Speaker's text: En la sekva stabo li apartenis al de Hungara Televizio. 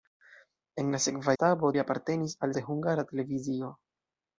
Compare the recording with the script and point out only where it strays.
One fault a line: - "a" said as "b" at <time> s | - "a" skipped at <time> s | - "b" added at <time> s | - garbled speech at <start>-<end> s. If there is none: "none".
none